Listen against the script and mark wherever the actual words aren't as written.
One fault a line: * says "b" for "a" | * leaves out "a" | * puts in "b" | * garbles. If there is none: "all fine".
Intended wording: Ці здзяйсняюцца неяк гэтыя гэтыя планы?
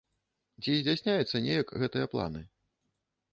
* leaves out "гэтыя"